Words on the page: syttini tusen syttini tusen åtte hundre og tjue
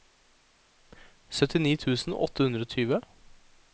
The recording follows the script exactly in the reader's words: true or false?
false